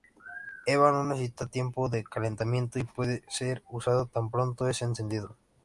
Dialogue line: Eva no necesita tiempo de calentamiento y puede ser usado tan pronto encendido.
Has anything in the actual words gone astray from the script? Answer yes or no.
yes